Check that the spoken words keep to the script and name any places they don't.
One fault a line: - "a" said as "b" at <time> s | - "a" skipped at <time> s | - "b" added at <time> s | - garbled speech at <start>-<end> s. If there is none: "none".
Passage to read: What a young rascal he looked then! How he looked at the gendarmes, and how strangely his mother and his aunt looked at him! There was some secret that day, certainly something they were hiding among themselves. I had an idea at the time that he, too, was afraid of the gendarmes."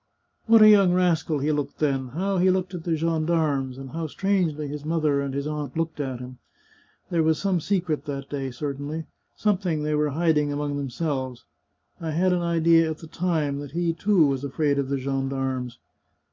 none